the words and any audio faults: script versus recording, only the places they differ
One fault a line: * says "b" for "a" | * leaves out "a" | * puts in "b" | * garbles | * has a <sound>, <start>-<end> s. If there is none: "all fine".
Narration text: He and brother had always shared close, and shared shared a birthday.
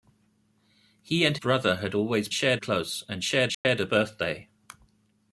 * has a dropout, 3.5-3.6 s